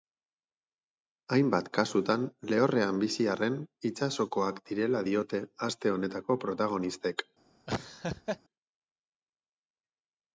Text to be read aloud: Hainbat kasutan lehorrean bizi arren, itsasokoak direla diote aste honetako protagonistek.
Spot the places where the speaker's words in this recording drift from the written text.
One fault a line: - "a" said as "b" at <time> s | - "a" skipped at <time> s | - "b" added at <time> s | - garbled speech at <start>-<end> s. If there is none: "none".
none